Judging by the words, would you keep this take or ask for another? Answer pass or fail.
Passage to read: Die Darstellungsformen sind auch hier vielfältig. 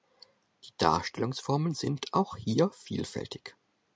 pass